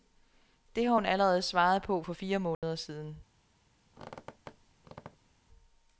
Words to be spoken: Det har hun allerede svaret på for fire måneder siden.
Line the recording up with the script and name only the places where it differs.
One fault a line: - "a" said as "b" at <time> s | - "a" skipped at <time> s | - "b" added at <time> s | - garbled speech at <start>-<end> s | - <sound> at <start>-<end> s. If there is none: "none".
- dropout at 2.5-2.6 s
- squeak at 3.9-5.4 s